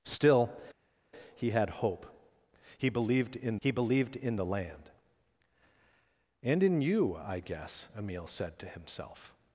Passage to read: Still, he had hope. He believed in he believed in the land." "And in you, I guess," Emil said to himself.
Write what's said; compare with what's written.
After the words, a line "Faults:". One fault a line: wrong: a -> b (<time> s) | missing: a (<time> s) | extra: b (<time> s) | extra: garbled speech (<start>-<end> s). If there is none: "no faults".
Still, he had hope. He believed in he believed in the land." "And in you, I guess," Emil said to himself.
Faults:
no faults